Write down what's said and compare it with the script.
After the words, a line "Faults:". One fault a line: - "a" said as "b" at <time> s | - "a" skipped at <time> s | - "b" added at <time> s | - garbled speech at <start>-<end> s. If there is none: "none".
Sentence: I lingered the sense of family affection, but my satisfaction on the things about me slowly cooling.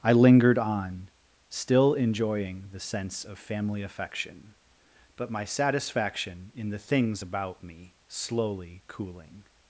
I lingered on, still enjoying the sense of family affection, but my satisfaction in the things about me slowly cooling.
Faults:
- "on still enjoying" added at 0.6 s
- "on" said as "in" at 6.5 s